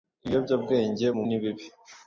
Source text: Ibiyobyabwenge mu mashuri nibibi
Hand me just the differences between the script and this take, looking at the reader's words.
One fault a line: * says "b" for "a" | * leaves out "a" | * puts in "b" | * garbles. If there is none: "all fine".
* leaves out "mashuri"